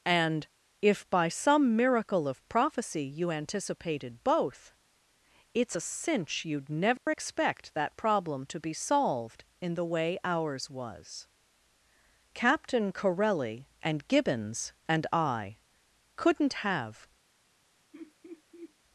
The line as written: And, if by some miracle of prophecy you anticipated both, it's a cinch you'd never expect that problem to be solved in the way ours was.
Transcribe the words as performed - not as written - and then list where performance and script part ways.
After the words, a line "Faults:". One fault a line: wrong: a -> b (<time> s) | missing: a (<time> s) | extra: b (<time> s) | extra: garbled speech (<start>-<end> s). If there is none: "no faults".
And, if by some miracle of prophecy you anticipated both, it's a cinch you'd never expect that problem to be solved in the way ours was. Captain Corelli and Gibbons and I couldn't have
Faults:
extra: Captain Corelli and Gibbons and I couldn't have (12.3 s)